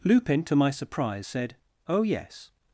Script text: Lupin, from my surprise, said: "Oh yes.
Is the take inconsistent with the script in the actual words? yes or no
yes